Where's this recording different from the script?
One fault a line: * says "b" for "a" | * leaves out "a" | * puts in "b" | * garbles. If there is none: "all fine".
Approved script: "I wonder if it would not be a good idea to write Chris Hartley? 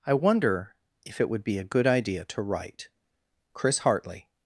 * leaves out "not"